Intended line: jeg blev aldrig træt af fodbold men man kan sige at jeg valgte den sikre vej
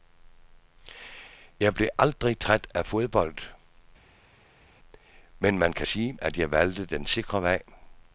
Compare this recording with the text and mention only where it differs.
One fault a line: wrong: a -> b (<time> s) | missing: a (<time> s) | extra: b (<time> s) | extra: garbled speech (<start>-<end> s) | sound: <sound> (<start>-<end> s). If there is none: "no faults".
no faults